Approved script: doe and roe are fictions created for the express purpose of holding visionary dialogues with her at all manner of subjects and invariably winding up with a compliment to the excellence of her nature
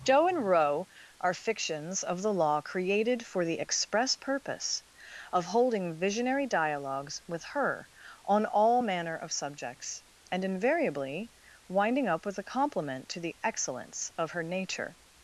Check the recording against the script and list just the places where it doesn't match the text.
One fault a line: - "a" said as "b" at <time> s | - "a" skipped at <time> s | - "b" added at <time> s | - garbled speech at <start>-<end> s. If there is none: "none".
- "of the law" added at 2.0 s
- "at" said as "on" at 8.2 s